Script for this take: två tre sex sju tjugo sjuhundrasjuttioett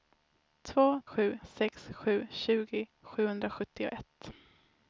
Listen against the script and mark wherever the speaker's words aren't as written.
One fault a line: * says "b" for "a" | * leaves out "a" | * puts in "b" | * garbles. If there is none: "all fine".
* says "sju" for "tre"